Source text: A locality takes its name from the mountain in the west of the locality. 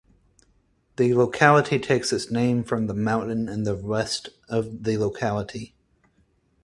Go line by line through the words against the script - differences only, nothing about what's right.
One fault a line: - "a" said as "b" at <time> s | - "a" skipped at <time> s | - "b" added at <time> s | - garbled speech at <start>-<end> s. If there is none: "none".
- "A" said as "The" at 0.9 s